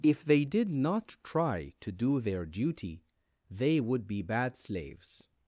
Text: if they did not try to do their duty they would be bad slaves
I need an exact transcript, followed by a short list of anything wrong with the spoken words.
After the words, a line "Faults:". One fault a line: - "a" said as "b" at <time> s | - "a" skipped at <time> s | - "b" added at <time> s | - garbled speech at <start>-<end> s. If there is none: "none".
if they did not try to do their duty they would be bad slaves
Faults:
none